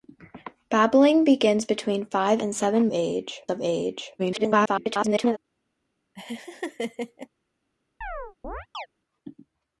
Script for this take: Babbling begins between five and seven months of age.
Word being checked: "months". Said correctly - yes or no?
no